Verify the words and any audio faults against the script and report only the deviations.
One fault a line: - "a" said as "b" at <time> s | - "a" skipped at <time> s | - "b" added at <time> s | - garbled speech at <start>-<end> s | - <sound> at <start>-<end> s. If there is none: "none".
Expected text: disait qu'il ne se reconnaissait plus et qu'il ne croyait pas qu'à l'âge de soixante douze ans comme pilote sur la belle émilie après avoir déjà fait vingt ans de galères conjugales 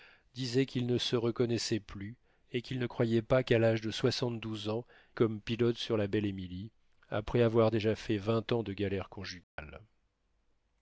- dropout at 9.4-9.6 s